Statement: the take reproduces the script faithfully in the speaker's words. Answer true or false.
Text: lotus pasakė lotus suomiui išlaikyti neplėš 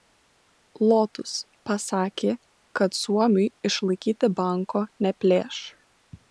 false